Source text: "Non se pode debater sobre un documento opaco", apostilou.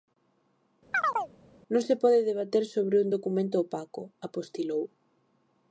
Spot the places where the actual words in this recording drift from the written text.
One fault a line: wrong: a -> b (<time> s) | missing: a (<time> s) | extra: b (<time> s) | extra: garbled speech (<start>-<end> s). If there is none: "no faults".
no faults